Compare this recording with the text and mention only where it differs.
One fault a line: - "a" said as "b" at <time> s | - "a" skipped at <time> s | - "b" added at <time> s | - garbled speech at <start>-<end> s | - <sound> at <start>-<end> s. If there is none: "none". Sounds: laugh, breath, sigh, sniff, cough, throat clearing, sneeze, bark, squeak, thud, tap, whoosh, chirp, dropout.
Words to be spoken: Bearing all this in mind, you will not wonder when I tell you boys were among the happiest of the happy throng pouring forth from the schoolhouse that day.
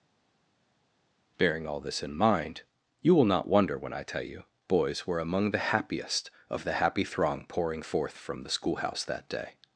none